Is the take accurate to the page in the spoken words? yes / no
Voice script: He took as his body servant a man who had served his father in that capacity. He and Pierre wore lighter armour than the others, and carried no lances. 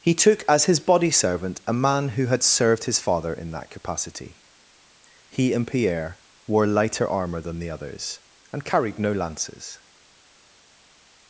yes